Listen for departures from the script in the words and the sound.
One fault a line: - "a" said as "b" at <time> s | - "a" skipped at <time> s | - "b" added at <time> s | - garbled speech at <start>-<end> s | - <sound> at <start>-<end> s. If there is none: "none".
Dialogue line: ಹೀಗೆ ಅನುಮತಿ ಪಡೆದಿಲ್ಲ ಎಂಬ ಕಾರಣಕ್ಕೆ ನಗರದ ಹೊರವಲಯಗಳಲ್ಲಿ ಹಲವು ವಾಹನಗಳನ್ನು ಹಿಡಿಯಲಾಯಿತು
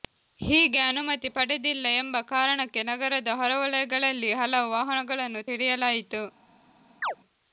- chirp at 7.0-7.2 s